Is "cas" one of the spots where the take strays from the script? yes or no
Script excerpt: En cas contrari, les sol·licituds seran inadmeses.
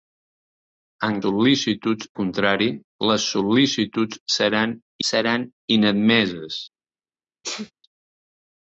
yes